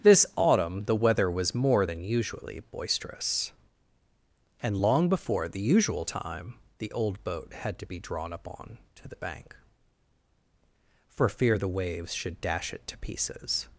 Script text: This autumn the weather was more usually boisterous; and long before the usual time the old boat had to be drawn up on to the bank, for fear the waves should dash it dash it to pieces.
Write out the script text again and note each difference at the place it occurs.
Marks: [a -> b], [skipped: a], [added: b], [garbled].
This autumn the weather was more [added: than] usually boisterous; and long before the usual time the old boat had to be drawn up on to the bank, for fear the waves should dash it [skipped: dash it] to pieces.